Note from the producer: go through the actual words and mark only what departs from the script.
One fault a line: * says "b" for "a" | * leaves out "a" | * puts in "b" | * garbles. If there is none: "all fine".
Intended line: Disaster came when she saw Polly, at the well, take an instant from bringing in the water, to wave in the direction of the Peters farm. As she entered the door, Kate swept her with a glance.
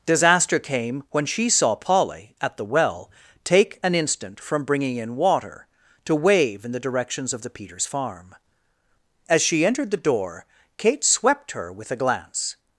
* leaves out "the"
* says "directions" for "direction"